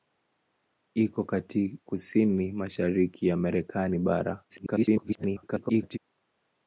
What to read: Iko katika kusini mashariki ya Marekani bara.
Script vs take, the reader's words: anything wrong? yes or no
yes